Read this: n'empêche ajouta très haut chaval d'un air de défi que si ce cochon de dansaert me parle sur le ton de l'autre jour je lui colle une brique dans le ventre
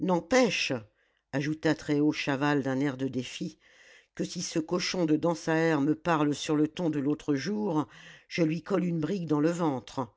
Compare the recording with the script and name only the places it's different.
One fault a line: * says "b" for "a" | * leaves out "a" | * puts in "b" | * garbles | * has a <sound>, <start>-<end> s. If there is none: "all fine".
all fine